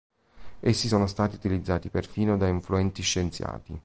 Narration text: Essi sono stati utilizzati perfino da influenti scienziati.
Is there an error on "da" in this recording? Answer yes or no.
no